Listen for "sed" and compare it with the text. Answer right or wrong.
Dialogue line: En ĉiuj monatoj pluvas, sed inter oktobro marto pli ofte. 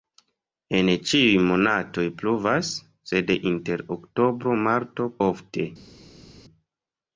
right